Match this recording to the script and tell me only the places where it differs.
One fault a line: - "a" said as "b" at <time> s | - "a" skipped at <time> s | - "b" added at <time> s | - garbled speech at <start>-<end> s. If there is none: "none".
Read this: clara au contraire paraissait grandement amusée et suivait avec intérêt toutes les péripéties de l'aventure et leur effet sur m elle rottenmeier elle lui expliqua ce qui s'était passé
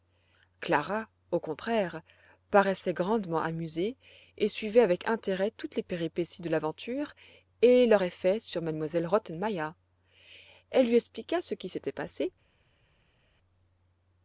none